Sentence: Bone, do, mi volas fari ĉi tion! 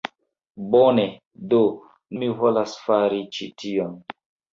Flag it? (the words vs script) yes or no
no